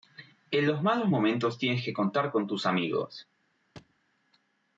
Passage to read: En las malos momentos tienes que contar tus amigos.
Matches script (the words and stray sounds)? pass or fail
fail